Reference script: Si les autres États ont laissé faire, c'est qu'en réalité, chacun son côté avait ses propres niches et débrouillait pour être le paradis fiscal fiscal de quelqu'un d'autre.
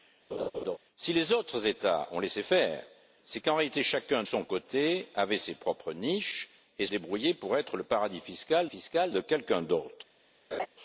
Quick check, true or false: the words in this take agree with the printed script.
true